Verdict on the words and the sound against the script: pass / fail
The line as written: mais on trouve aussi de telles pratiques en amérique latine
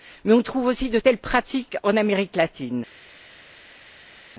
pass